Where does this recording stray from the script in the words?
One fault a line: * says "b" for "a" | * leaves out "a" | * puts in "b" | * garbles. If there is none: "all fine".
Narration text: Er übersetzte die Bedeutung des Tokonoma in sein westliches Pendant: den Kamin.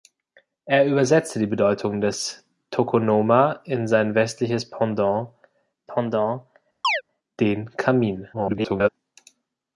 * puts in "Pendant"
* garbles